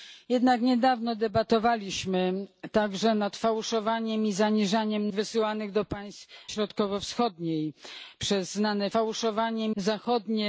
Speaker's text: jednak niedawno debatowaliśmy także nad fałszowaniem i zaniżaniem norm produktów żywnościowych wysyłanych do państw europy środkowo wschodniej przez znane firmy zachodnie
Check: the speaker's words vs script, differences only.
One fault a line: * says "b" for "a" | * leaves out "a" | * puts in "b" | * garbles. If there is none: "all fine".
* leaves out "norm produktów żywnościowych"
* leaves out "europy"
* says "fałszowaniem" for "firmy"